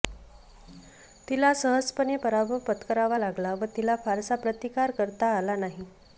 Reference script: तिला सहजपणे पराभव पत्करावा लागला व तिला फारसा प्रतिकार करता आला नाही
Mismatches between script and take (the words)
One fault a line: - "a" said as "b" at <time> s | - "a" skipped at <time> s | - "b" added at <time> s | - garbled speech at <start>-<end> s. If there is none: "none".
none